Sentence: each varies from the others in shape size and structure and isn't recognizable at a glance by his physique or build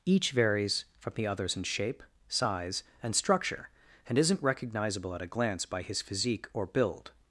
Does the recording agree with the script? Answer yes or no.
yes